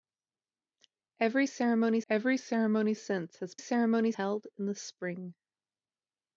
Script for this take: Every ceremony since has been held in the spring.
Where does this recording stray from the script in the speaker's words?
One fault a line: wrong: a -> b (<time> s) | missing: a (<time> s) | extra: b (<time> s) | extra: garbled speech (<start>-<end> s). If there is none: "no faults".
extra: every ceremony (2.1 s)
wrong: been -> ceremony (3.6 s)